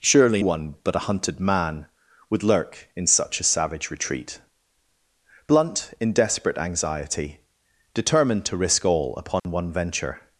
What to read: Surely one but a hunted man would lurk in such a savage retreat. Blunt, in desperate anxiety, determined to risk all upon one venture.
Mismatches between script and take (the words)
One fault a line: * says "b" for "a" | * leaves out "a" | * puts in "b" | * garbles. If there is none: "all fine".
all fine